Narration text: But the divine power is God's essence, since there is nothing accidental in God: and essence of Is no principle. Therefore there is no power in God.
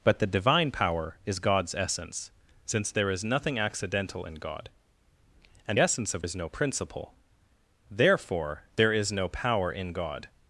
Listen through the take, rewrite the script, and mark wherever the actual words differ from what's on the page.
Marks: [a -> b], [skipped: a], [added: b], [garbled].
But the divine power is God's essence, since there is nothing accidental in God: and essence of Is no principle. Therefore there is no power in God.